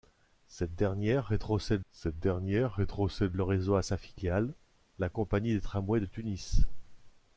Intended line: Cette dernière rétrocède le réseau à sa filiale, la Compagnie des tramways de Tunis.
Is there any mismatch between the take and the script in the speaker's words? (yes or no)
yes